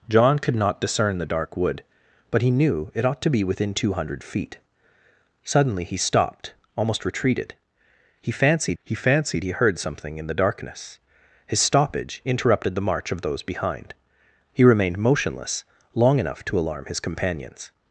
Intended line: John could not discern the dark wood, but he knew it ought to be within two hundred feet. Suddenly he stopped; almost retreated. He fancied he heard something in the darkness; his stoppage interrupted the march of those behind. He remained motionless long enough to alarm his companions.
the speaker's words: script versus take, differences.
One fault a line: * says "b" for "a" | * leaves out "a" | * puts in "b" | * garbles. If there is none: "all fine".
* puts in "fancied he"